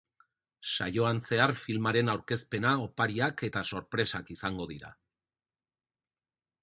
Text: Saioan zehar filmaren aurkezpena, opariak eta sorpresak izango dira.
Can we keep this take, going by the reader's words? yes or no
yes